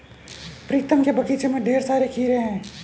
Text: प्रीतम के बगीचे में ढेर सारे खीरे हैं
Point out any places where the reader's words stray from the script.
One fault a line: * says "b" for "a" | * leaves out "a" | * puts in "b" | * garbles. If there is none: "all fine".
all fine